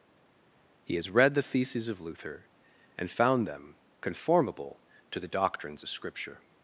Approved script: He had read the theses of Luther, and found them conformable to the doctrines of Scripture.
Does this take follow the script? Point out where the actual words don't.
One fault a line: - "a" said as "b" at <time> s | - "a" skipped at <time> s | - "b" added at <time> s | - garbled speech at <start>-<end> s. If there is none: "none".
- "had" said as "has" at 1.0 s